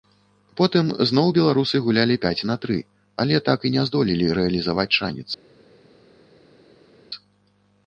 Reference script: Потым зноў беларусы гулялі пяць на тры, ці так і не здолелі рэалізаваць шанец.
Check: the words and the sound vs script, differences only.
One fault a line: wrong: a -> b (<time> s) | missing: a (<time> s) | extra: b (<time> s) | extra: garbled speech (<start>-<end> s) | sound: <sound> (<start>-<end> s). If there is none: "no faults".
wrong: ці -> але (3.2 s)